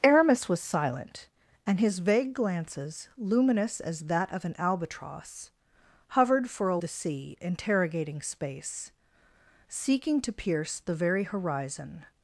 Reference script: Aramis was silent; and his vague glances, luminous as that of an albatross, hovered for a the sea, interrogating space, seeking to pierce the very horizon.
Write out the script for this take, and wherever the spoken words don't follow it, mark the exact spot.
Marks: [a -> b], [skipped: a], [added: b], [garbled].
Aramis was silent; and his vague glances, luminous as that of an albatross, hovered for a the sea, interrogating space, seeking to pierce the very horizon.